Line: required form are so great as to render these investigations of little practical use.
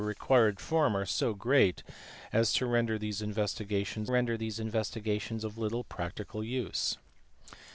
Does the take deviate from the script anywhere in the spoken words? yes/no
yes